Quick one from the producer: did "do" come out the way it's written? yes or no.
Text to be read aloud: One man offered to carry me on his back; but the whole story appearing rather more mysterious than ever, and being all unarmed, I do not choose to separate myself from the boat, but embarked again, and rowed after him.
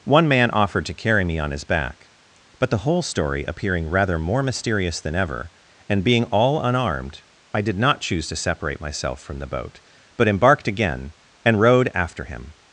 no